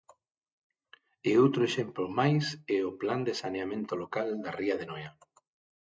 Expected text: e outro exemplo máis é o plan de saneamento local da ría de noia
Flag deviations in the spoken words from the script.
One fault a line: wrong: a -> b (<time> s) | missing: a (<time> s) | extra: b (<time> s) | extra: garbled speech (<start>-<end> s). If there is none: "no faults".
no faults